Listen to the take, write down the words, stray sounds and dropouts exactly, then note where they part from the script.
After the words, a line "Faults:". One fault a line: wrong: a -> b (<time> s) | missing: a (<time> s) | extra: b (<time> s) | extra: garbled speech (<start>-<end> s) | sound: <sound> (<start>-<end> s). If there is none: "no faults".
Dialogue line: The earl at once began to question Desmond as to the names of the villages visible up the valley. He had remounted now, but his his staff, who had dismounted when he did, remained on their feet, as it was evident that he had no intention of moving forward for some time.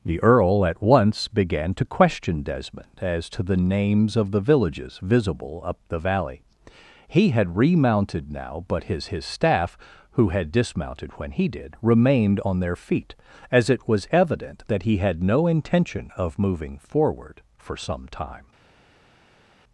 The earl at once began to question Desmond as to the names of the villages visible up the valley. He had remounted now, but his his staff, who had dismounted when he did, remained on their feet, as it was evident that he had no intention of moving forward for some time.
Faults:
no faults